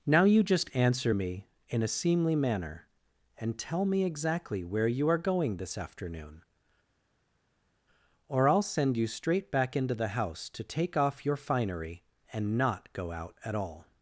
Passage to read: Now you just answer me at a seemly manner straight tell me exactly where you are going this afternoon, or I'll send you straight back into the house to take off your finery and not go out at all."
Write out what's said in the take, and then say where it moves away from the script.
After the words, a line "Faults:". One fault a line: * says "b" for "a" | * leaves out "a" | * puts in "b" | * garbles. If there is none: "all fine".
Now you just answer me in a seemly manner and tell me exactly where you are going this afternoon, or I'll send you straight back into the house to take off your finery and not go out at all."
Faults:
* says "in" for "at"
* says "and" for "straight"